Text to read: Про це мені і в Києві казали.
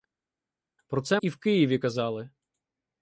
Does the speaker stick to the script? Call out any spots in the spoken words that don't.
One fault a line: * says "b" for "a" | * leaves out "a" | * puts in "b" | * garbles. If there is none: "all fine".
* leaves out "мені"